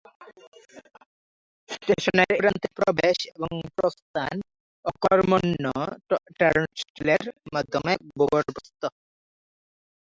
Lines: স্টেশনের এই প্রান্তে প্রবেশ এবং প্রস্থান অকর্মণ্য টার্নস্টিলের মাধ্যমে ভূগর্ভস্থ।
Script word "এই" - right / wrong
wrong